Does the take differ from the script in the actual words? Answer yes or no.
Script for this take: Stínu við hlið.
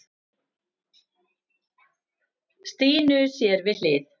yes